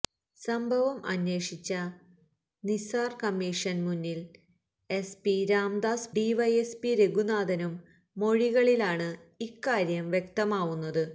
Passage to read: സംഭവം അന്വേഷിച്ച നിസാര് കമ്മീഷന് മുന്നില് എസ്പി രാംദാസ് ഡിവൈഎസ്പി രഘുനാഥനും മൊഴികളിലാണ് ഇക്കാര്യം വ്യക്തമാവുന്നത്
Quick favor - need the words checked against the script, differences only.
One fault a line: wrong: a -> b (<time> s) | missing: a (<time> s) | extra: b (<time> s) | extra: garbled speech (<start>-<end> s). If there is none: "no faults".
no faults